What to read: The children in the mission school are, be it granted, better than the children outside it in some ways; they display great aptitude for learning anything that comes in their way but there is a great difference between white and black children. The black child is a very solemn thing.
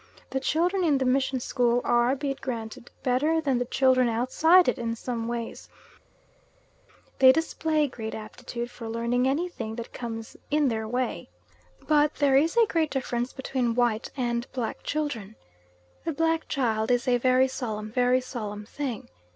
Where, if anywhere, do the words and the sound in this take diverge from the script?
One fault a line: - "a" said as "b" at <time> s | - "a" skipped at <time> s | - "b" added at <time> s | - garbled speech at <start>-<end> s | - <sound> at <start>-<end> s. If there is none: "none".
- "very solemn" added at 17.9 s